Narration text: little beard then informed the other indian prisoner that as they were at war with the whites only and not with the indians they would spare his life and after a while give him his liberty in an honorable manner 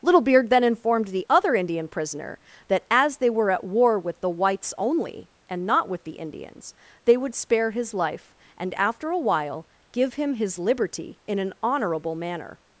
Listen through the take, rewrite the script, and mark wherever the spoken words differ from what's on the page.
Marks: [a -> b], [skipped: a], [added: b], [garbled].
little beard then informed the other indian prisoner that as they were at war with the whites only and not with the indians they would spare his life and after a while give him his liberty in an honorable manner